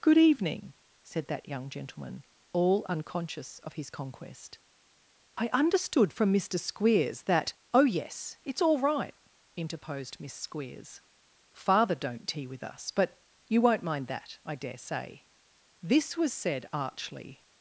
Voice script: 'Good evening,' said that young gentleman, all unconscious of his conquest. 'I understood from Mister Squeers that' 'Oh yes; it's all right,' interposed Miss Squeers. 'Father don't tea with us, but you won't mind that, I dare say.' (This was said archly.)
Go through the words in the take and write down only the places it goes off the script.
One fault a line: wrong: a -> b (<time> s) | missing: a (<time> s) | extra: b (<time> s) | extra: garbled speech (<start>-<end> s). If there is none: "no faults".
no faults